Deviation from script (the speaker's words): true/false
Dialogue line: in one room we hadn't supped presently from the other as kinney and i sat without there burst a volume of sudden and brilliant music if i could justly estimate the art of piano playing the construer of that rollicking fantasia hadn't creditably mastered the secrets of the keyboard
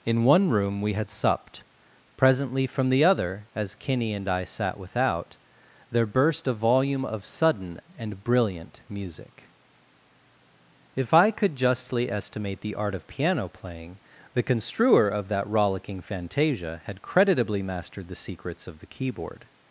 true